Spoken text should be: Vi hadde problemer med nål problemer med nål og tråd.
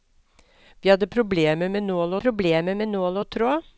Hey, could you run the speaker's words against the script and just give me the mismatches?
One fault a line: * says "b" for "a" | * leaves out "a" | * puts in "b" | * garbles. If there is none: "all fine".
all fine